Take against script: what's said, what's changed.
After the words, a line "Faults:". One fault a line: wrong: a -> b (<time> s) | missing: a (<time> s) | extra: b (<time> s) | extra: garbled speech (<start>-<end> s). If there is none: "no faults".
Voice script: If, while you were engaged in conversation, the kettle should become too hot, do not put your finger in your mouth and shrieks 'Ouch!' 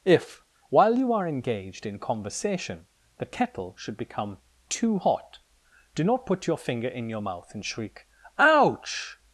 If, while you are engaged in conversation, the kettle should become too hot, do not put your finger in your mouth and shriek 'Ouch!'
Faults:
wrong: were -> are (1.1 s)
wrong: shrieks -> shriek (7.7 s)